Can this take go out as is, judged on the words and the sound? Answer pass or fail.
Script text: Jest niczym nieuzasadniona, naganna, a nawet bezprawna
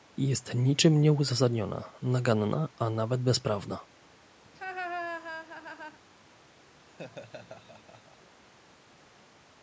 fail